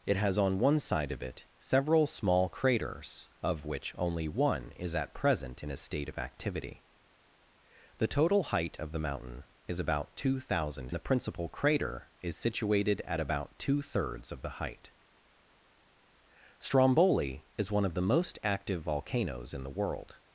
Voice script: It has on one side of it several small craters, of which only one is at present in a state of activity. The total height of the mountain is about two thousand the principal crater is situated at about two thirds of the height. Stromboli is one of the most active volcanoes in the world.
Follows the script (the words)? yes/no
yes